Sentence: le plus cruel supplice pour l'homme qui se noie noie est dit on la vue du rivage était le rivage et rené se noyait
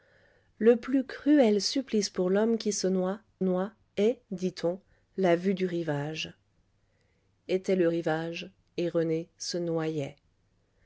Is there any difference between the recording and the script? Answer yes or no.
no